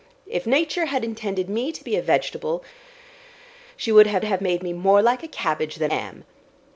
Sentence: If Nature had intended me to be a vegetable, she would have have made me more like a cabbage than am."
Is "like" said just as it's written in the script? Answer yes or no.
yes